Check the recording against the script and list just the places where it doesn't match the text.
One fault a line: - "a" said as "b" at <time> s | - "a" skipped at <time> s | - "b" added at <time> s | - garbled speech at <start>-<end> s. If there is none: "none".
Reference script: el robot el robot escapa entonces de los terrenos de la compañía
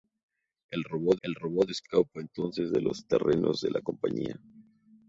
none